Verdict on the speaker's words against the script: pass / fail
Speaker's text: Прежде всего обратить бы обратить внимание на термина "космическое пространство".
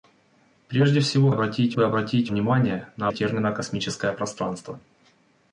pass